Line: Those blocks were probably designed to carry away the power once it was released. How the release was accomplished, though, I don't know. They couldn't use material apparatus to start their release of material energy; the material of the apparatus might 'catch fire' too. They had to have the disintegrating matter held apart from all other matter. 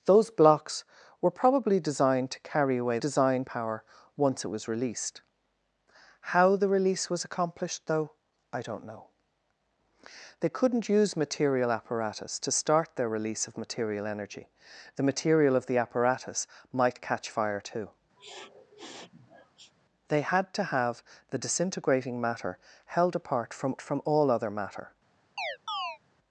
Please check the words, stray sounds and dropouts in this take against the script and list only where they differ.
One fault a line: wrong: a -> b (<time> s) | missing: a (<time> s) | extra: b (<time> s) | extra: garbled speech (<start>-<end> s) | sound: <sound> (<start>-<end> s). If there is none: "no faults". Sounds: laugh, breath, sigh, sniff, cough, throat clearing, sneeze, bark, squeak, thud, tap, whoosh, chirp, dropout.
wrong: the -> designed (3.0 s)
sound: sniff (18.2-19.7 s)
extra: from (23.8 s)
sound: chirp (25.4-26.0 s)